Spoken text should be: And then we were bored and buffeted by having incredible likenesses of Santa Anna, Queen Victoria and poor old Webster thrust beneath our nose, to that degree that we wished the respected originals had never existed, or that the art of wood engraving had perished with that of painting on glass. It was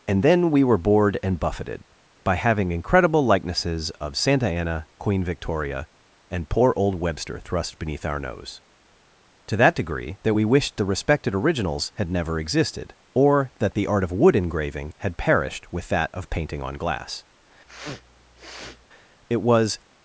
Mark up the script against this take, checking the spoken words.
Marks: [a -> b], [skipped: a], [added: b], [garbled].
And then we were bored and buffeted by having incredible likenesses of Santa Anna, Queen Victoria and poor old Webster thrust beneath our nose, to that degree that we wished the respected originals had never existed, or that the art of wood engraving had perished with that of painting on glass. It was